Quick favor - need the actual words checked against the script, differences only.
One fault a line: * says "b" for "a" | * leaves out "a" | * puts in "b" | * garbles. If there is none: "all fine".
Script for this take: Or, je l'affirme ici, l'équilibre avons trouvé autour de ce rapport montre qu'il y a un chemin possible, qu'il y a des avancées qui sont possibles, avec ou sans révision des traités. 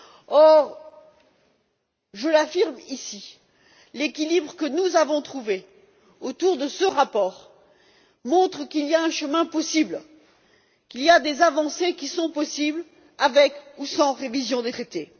* puts in "que nous"